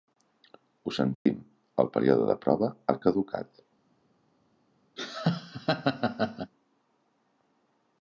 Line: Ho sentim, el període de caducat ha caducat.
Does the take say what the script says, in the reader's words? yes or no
no